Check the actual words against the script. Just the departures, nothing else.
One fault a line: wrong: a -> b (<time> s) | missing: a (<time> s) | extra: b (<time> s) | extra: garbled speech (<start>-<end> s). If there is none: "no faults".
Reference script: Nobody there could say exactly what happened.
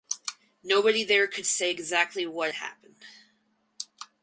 no faults